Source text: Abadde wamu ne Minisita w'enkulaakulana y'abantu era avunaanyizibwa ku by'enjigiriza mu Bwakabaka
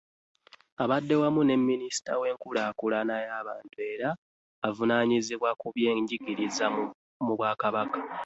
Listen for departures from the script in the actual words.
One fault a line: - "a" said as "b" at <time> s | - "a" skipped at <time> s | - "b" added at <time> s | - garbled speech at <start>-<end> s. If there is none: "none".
none